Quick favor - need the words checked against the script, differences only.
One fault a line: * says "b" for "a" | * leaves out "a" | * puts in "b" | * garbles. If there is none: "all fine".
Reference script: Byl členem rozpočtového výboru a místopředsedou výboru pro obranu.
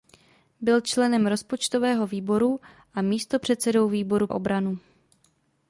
* leaves out "pro"